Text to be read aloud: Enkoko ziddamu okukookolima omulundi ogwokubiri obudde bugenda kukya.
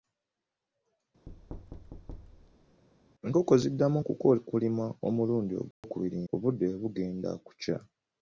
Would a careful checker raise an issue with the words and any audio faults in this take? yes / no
yes